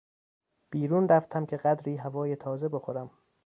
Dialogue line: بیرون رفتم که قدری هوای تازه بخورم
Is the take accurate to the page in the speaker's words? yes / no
yes